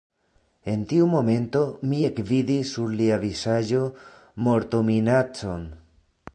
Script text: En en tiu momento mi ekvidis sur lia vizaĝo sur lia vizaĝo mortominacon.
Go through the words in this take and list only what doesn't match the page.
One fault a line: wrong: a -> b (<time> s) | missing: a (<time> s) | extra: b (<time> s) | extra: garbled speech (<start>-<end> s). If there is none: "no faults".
missing: en (0.8 s)
missing: sur lia vizaĝo (3.8 s)